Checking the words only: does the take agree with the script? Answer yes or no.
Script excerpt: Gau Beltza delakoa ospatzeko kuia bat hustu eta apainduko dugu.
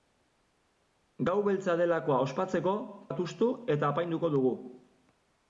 no